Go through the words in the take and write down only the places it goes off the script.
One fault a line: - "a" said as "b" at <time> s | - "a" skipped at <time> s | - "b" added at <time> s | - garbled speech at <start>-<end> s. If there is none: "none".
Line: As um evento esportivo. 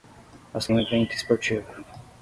none